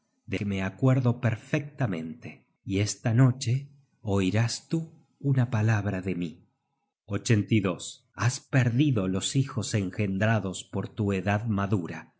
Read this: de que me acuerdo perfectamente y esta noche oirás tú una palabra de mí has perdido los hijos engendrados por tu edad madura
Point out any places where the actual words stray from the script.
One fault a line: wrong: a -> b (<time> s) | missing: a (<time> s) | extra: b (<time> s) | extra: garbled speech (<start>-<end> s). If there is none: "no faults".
no faults